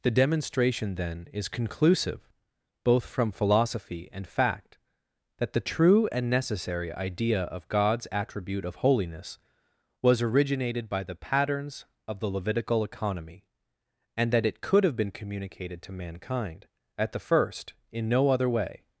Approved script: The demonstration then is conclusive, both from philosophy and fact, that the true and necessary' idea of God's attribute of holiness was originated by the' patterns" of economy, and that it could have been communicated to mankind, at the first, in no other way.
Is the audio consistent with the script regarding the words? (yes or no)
no